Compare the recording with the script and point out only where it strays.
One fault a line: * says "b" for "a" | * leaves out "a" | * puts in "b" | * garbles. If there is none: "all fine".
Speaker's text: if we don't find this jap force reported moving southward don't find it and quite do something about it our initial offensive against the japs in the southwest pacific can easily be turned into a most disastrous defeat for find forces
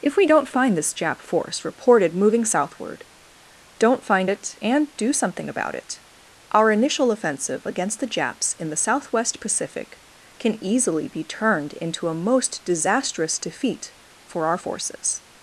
* leaves out "quite"
* says "our" for "find"